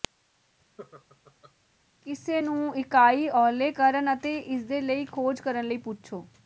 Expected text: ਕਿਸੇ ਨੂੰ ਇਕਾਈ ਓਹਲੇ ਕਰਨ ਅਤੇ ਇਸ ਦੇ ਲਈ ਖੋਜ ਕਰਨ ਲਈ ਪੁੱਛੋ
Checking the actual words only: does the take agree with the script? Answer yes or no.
yes